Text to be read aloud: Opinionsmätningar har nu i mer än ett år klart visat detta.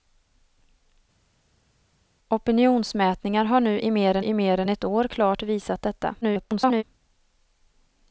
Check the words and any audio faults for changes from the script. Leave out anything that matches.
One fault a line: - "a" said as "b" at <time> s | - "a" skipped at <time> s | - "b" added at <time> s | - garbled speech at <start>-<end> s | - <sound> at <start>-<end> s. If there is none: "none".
- "i mer än" added at 4.2 s
- garbled speech at 6.2-6.8 s